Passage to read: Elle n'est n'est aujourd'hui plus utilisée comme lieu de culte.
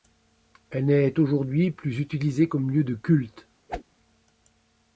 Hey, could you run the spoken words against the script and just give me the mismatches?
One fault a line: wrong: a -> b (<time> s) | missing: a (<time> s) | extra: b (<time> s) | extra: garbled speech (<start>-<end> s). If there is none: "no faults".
missing: n'est (1.2 s)